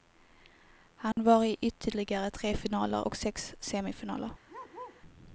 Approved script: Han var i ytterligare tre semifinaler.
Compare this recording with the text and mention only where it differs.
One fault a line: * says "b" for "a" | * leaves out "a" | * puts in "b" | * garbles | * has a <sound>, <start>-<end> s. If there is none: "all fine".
* has a dropout, 1.1-1.2 s
* puts in "finaler och sex"
* has a bark, 4.5-5.0 s